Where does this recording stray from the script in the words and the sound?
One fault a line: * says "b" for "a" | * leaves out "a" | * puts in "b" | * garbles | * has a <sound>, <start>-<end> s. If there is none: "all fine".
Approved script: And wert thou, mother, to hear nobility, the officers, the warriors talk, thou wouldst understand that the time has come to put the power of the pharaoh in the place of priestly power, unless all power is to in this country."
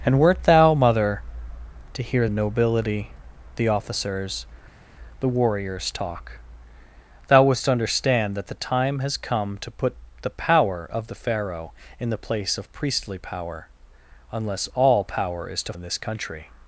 all fine